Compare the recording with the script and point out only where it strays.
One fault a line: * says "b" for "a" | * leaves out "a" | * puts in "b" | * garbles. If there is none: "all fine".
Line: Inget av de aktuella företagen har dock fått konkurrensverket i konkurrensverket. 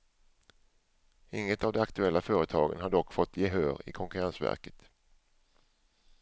* says "gehör" for "konkurrensverket"